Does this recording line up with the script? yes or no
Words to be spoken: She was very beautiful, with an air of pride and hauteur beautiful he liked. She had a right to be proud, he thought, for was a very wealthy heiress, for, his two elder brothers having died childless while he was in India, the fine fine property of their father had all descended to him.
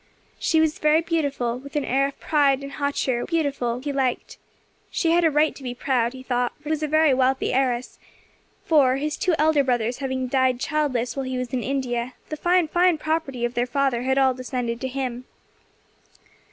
yes